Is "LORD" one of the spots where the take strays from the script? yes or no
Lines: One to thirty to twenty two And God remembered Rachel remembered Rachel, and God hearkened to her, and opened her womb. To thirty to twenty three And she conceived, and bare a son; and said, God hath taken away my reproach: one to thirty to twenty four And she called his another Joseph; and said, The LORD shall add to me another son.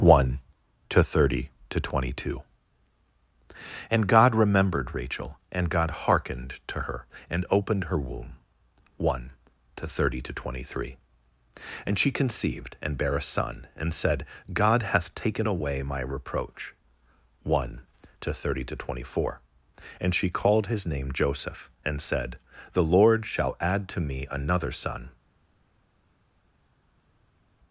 no